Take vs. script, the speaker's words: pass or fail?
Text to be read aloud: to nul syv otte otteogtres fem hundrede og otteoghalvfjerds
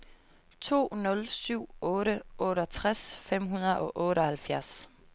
pass